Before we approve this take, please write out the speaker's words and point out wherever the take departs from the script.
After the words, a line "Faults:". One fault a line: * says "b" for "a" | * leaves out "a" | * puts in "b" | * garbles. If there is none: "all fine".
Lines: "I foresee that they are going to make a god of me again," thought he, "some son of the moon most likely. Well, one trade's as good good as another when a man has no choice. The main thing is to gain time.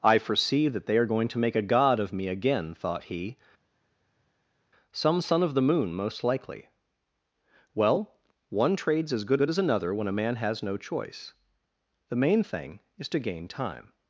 "I foresee that they are going to make a god of me again," thought he, "some son of the moon most likely. Well, one trade's as good good as another when a man has no choice. The main thing is to gain time.
Faults:
all fine